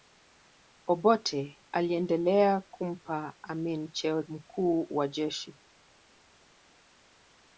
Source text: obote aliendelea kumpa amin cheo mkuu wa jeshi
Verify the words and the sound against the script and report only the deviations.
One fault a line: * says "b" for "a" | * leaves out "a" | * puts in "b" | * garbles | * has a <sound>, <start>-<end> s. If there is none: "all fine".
all fine